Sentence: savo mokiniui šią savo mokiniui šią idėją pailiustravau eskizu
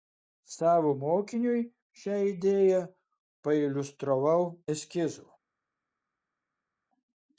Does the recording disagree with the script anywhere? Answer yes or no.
yes